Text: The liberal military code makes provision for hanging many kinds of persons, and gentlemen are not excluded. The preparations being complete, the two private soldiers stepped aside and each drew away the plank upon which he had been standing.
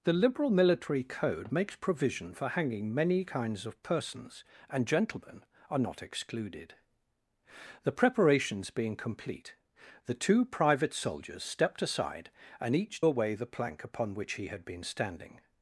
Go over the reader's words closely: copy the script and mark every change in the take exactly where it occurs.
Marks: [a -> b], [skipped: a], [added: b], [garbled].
The liberal military code makes provision for hanging many kinds of persons, and gentlemen are not excluded. The preparations being complete, the two private soldiers stepped aside and each [skipped: drew] away the plank upon which he had been standing.